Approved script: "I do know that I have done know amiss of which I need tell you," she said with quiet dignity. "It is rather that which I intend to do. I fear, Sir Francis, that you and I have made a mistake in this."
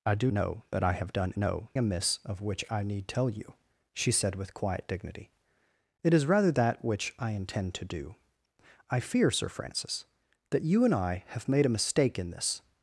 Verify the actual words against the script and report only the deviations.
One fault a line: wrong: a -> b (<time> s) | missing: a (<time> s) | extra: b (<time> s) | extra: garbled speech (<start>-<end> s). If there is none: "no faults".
no faults